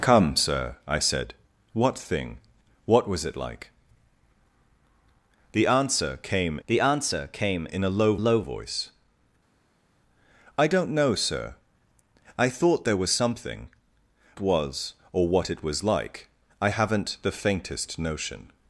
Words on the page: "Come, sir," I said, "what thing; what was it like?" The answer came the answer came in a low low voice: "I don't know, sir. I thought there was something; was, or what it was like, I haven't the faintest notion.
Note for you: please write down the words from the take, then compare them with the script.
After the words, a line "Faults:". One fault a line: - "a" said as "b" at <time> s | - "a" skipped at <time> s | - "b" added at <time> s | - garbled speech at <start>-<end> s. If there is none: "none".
"Come, sir," I said, "what thing; what was it like?" The answer came the answer came in a low low voice: "I don't know, sir. I thought there was something; was, or what it was like, I haven't the faintest notion.
Faults:
none